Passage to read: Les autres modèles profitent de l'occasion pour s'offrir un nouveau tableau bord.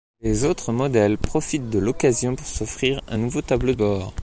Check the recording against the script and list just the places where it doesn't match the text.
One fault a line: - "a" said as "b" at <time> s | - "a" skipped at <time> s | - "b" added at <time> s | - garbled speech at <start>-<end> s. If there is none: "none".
none